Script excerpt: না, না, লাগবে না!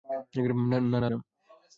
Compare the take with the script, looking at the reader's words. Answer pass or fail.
fail